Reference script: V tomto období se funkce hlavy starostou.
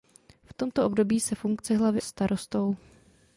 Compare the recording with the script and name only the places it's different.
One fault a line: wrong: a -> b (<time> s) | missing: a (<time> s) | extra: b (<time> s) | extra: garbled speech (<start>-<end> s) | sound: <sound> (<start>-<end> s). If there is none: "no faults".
no faults